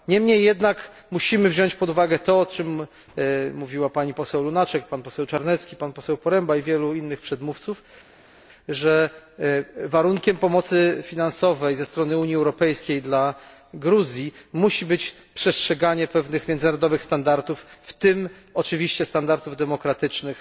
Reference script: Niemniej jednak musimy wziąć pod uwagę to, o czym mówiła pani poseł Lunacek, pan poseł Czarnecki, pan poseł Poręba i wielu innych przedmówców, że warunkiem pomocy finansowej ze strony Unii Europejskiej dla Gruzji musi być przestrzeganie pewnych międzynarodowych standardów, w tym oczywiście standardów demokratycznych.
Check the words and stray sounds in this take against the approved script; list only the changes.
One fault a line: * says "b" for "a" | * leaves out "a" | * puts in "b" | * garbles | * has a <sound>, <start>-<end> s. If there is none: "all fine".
all fine